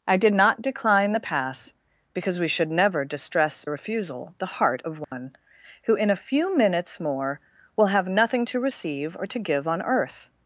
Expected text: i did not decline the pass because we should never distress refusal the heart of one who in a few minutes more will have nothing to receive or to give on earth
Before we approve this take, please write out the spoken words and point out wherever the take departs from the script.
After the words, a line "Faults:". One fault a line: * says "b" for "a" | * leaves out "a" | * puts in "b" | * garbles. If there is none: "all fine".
i did not decline the pass because we should never distress refusal the heart of one who in a few minutes more will have nothing to receive or to give on earth
Faults:
all fine